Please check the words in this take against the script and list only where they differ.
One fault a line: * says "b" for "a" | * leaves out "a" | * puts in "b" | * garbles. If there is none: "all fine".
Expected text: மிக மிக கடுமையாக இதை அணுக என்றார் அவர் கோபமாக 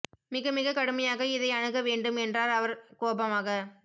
* puts in "வேண்டும்"